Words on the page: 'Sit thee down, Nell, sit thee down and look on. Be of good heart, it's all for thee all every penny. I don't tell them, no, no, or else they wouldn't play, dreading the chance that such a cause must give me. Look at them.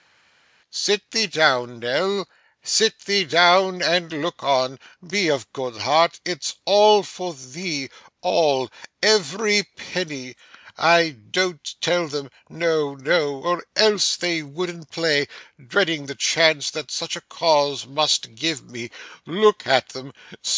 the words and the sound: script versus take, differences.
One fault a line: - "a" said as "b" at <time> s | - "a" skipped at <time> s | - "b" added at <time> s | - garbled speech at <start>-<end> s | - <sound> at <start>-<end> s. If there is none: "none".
none